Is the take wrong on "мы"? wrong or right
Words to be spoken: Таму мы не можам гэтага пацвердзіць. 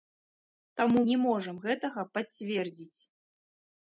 wrong